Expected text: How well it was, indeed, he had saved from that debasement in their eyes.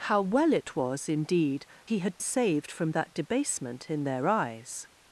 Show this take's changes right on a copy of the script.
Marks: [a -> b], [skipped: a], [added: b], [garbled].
How well it was, indeed, he had saved from that debasement in their eyes.